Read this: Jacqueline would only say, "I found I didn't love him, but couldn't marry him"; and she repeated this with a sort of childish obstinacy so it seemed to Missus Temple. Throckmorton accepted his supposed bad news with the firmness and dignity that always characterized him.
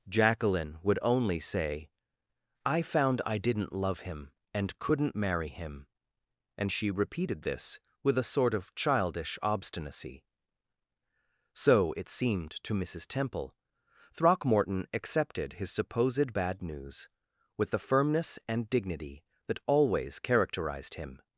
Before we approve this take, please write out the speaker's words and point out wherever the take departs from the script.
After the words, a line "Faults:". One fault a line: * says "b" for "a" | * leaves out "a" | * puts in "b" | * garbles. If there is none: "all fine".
Jacqueline would only say, "I found I didn't love him, and couldn't marry him"; and she repeated this with a sort of childish obstinacy so it seemed to Missus Temple. Throckmorton accepted his supposed bad news with the firmness and dignity that always characterized him.
Faults:
* says "and" for "but"